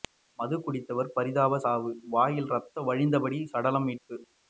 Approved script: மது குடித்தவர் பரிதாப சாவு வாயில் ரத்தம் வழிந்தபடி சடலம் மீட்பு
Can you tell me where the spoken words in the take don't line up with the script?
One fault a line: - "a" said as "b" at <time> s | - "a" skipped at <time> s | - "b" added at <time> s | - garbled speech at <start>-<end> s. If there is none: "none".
none